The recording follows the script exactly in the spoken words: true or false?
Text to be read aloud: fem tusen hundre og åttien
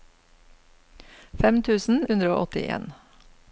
true